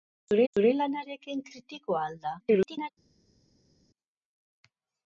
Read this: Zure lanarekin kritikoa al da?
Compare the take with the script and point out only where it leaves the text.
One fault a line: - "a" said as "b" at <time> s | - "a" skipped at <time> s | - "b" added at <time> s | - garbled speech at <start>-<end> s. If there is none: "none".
- "zure" added at 0.5 s
- garbled speech at 2.4-2.9 s